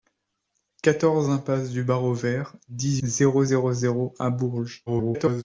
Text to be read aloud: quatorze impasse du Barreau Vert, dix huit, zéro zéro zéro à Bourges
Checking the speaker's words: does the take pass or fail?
fail